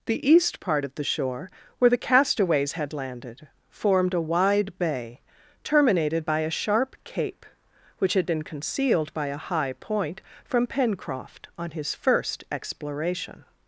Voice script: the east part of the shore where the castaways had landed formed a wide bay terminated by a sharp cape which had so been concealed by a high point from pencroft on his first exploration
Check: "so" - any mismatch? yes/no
yes